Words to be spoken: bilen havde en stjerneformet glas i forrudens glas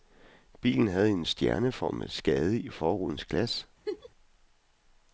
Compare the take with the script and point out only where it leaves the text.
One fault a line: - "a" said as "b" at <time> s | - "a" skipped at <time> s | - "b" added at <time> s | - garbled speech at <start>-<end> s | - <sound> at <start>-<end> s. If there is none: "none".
- "glas" said as "skade" at 2.1 s
- laugh at 3.9-4.1 s